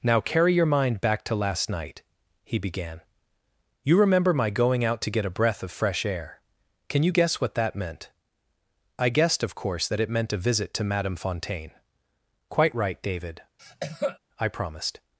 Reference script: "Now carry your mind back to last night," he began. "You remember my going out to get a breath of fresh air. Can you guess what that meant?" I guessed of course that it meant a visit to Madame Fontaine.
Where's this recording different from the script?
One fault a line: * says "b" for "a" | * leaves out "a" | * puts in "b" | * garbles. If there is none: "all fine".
* puts in "Quite right David I promised"